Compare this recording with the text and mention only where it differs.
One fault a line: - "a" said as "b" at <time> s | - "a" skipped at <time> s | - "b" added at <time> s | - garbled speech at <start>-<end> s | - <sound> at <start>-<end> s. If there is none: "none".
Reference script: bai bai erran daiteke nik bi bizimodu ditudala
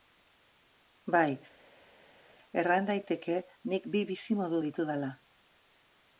- "bai" skipped at 1.3 s